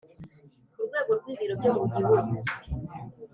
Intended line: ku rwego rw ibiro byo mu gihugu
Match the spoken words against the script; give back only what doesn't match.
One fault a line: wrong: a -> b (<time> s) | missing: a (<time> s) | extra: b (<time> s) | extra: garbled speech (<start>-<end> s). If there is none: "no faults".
no faults